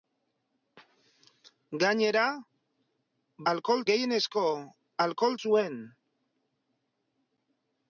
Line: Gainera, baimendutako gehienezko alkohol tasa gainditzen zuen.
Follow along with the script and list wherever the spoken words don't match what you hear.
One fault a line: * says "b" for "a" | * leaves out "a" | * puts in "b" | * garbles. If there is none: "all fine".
* says "alkohol" for "baimendutako"
* leaves out "tasa gainditzen"